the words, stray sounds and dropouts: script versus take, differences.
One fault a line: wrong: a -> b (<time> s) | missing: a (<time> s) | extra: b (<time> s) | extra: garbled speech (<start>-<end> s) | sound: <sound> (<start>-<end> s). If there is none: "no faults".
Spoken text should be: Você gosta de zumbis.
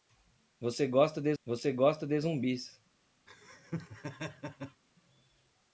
extra: você gosta de (1.4 s)
sound: laugh (3.3-4.8 s)